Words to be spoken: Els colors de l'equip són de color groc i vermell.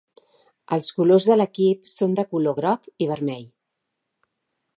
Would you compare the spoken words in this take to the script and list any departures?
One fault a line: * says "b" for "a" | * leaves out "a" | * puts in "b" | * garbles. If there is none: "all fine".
all fine